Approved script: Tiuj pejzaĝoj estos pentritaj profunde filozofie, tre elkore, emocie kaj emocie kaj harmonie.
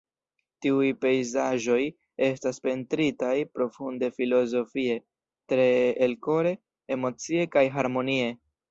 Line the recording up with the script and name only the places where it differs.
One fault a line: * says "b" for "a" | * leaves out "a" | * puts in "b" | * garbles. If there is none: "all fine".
* says "estas" for "estos"
* leaves out "emocie kaj"